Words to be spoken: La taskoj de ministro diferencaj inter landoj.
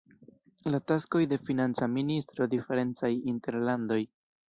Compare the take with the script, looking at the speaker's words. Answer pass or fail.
fail